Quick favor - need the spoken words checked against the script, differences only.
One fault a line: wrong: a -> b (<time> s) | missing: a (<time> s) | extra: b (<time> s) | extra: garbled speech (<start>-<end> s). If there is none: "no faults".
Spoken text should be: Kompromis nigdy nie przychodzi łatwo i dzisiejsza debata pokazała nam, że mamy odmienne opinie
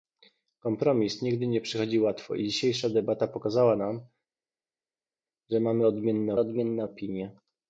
extra: odmienne (6.4 s)